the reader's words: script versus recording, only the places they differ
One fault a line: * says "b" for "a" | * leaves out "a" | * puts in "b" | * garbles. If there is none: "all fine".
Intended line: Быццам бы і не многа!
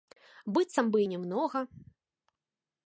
all fine